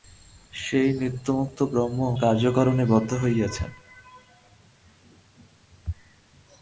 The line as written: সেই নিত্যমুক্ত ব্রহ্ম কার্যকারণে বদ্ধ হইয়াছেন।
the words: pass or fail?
pass